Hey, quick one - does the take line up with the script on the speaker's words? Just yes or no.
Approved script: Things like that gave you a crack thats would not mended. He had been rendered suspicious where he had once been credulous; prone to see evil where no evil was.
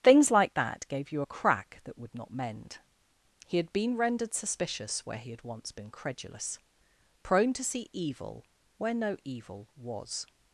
no